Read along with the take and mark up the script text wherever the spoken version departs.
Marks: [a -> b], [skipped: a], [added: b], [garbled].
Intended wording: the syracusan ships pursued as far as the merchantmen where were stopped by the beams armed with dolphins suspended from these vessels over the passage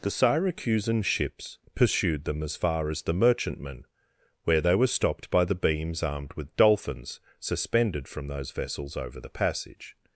the syracusan ships pursued [added: them] as far as the merchantmen where [added: they] were stopped by the beams armed with dolphins suspended from [these -> those] vessels over the passage